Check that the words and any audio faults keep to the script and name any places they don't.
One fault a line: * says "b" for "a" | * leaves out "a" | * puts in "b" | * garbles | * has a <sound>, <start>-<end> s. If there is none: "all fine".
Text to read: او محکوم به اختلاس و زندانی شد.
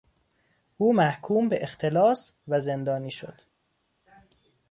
all fine